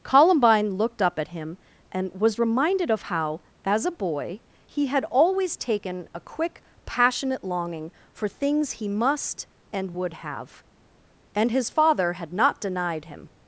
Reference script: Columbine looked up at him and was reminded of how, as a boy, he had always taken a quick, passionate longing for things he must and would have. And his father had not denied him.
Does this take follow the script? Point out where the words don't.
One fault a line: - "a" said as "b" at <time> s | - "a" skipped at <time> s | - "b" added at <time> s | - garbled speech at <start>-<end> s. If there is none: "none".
none